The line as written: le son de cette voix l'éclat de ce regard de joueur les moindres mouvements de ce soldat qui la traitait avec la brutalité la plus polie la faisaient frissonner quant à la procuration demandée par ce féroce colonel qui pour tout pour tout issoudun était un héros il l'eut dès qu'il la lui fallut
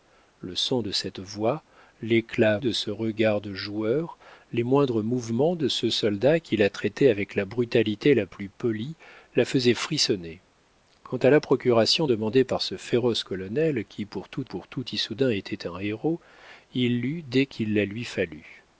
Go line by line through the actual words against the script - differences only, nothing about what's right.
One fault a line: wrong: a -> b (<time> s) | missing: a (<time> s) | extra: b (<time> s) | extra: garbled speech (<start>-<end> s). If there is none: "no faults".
no faults